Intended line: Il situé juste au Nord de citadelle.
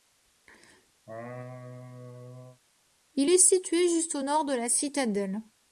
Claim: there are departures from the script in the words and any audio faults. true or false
true